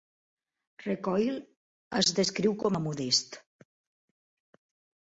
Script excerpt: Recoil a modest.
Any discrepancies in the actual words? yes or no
yes